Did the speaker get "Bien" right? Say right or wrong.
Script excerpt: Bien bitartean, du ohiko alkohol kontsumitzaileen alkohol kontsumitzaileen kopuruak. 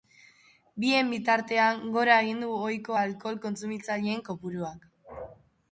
right